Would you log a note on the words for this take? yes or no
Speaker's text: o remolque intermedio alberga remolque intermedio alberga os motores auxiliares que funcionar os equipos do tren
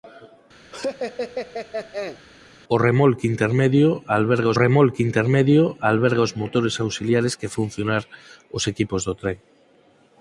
no